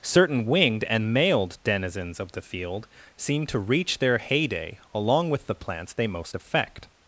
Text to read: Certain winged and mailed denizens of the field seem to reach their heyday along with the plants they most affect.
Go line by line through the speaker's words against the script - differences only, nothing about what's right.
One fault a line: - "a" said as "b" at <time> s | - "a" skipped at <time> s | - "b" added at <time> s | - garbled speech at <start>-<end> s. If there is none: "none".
none